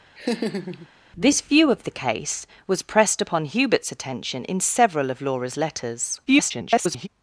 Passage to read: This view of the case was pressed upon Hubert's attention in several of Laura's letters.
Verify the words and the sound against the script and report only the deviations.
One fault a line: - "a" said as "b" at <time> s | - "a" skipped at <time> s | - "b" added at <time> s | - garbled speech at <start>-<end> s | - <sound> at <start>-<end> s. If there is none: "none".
- laugh at 0.2-0.9 s
- garbled speech at 6.3-7.1 s